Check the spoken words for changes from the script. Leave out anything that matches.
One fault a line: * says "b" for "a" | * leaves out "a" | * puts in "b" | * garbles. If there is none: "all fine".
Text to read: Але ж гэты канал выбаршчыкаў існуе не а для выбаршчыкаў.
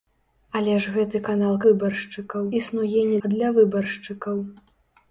all fine